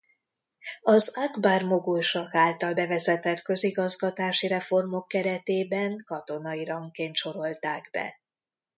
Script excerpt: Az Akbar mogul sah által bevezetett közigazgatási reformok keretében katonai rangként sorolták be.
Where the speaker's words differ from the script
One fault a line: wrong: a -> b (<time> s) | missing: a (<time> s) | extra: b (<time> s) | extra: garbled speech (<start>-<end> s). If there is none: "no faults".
no faults